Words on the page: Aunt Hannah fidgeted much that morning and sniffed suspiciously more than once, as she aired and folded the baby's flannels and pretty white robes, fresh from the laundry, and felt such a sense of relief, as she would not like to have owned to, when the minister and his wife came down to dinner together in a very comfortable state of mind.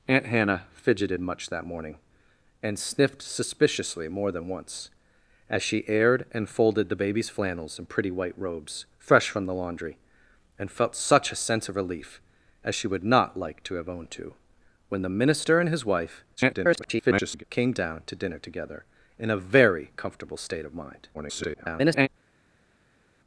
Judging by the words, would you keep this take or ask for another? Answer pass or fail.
fail